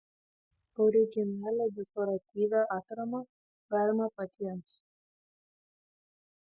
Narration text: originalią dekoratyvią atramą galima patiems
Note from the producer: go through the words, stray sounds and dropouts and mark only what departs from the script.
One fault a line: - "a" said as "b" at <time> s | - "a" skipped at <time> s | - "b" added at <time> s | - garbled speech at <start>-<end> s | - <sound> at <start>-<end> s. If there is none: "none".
none